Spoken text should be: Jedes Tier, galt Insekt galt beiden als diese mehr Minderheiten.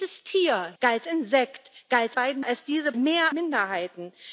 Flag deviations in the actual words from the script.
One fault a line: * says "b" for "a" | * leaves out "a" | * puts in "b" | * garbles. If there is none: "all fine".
all fine